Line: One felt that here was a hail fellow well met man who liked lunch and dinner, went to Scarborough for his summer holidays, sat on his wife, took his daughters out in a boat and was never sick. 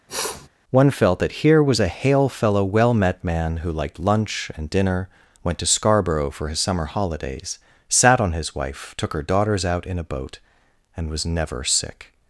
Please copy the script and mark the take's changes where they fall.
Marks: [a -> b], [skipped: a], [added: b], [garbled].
One felt that here was a hail fellow well met man who liked lunch and dinner, went to Scarborough for his summer holidays, sat on his wife, took [his -> her] daughters out in a boat and was never sick.